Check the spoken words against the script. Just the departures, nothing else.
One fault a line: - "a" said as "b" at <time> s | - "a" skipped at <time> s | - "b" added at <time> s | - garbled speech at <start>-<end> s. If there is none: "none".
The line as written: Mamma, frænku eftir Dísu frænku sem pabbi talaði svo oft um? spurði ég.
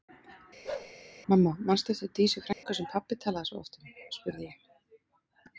- "frænku" said as "manstu" at 1.7 s